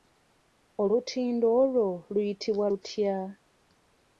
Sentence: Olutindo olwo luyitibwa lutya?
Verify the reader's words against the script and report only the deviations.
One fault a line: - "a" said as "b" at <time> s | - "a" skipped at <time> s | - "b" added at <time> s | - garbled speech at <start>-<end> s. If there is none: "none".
none